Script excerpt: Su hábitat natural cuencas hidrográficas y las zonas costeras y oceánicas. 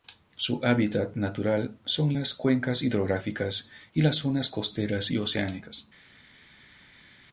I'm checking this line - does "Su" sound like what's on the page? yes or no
yes